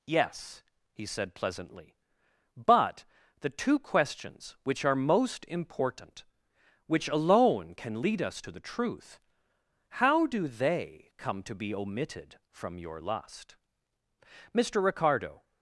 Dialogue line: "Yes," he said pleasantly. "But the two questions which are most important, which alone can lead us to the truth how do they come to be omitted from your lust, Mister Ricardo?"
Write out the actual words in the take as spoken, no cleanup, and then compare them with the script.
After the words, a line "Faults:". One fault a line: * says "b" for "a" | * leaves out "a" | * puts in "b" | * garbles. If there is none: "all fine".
"Yes," he said pleasantly. "But the two questions which are most important, which alone can lead us to the truth how do they come to be omitted from your lust, Mister Ricardo?"
Faults:
all fine